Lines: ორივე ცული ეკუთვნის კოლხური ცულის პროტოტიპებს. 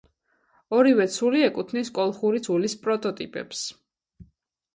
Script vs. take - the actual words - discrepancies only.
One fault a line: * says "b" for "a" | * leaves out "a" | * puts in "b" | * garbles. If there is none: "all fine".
all fine